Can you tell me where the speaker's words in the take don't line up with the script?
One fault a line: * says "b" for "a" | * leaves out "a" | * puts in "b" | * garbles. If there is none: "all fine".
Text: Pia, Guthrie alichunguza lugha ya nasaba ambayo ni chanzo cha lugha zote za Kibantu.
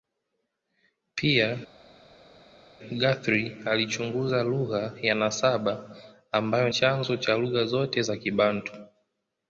* leaves out "ni"